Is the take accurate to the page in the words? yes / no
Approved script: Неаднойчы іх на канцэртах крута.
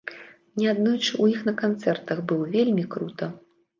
no